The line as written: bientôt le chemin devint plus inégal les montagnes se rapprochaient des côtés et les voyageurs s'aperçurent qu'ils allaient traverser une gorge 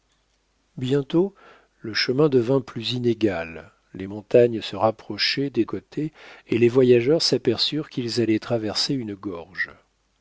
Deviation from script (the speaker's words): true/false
false